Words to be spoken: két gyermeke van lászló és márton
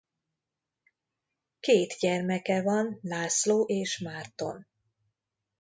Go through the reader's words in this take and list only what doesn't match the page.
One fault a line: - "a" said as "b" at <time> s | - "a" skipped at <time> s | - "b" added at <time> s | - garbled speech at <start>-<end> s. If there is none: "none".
none